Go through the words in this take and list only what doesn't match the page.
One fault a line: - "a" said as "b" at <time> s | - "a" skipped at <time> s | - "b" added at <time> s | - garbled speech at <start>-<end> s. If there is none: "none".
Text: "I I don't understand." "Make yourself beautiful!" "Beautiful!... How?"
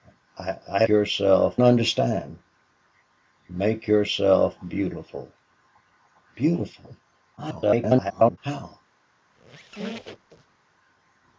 - "don't" said as "yourself" at 0.9 s
- garbled speech at 7.4-8.4 s